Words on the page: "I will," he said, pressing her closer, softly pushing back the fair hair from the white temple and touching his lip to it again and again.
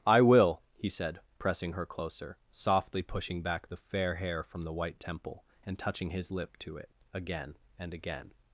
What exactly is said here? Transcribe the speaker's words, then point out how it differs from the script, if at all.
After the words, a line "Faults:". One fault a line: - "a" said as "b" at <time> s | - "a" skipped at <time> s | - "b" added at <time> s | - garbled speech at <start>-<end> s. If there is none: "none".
"I will," he said, pressing her closer, softly pushing back the fair hair from the white temple and touching his lip to it again and again.
Faults:
none